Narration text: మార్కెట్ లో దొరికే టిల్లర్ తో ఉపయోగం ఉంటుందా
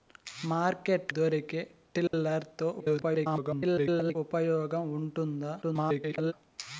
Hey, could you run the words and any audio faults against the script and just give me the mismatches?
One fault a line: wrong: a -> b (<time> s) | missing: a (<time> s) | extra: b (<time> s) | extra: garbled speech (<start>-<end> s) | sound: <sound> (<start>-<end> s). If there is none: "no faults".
missing: లో (1.1 s)
sound: dropout (2.1-2.1 s)
extra: garbled speech (2.8-4.2 s)
extra: garbled speech (5.6-6.3 s)